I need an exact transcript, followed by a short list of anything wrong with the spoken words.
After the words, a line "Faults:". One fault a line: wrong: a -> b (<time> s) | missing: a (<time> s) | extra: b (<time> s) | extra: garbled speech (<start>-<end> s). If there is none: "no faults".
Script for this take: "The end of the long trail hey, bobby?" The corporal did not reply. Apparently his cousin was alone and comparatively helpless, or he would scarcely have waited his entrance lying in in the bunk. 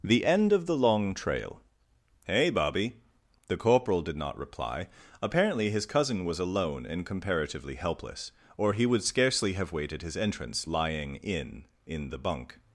"The end of the long trail hey, bobby?" The corporal did not reply. Apparently his cousin was alone and comparatively helpless, or he would scarcely have waited his entrance lying in in the bunk.
Faults:
no faults